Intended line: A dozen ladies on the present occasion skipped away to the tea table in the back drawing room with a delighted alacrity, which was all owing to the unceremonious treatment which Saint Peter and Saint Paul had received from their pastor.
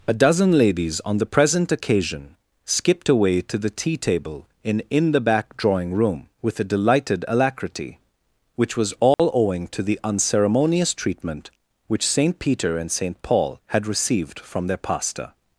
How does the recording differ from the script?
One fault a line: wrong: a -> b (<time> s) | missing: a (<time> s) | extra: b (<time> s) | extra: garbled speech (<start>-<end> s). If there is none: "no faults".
extra: in (4.9 s)